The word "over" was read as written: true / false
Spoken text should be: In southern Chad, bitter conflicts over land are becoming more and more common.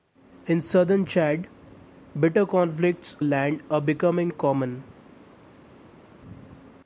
false